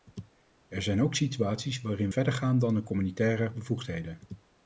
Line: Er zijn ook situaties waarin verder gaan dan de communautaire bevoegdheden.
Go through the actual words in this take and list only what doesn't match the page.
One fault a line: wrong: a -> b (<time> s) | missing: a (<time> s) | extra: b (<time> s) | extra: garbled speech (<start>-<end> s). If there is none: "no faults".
no faults